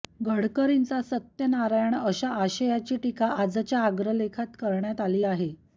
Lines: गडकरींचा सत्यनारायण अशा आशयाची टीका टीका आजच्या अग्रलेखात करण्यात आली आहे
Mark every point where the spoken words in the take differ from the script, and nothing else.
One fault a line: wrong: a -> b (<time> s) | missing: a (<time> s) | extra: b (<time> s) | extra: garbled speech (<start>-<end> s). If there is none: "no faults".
missing: टीका (3.3 s)